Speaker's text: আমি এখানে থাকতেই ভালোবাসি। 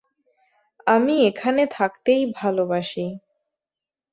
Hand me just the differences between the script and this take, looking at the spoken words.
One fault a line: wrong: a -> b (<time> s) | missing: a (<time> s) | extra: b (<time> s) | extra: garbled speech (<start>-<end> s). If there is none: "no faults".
no faults